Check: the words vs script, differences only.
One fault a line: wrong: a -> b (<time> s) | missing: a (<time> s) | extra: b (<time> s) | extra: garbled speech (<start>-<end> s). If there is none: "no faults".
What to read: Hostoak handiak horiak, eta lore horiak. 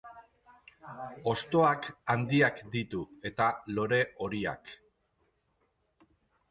wrong: horiak -> ditu (2.8 s)